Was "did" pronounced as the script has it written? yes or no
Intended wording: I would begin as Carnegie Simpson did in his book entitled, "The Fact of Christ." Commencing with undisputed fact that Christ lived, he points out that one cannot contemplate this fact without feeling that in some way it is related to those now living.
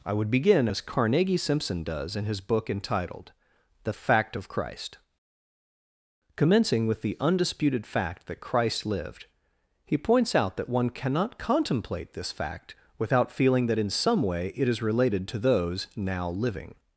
no